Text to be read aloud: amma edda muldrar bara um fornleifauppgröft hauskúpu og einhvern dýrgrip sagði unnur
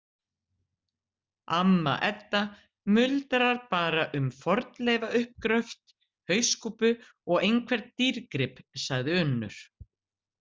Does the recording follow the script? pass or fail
pass